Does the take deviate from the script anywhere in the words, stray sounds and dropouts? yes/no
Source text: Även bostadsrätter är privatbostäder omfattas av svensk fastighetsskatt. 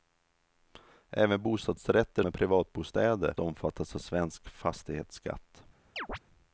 yes